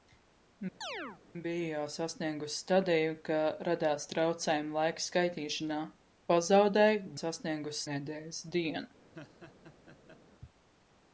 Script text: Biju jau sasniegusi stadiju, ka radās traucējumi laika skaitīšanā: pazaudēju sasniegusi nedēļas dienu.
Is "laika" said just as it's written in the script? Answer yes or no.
yes